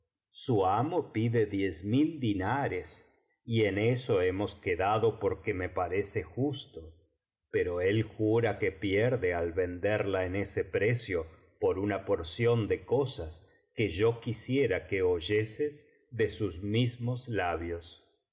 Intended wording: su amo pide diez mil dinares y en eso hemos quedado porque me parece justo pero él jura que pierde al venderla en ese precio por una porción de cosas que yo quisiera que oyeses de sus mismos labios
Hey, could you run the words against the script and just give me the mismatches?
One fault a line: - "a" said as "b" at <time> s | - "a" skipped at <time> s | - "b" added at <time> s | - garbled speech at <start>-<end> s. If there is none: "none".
none